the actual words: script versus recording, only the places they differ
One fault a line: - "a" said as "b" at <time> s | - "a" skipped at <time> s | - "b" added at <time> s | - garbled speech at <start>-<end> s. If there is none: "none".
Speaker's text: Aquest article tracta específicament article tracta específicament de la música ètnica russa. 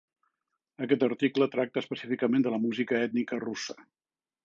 - "article tracta específicament" skipped at 2.5 s